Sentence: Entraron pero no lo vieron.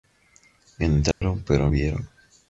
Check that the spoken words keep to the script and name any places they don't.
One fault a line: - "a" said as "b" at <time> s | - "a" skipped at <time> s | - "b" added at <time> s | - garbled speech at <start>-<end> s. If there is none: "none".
- "no lo" skipped at 1.7 s